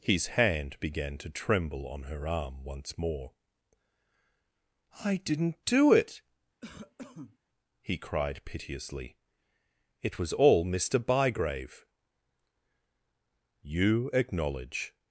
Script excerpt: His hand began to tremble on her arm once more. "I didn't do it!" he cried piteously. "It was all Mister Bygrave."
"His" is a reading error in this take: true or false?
false